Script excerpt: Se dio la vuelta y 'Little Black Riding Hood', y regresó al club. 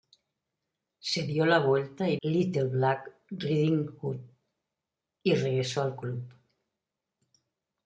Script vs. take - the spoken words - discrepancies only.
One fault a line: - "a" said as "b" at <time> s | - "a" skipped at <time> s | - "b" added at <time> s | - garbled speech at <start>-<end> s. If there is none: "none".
none